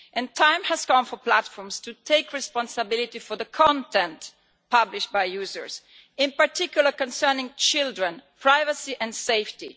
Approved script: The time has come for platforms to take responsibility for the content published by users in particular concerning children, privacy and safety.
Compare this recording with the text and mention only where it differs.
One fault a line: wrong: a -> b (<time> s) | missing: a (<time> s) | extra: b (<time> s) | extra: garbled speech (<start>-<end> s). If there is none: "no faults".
no faults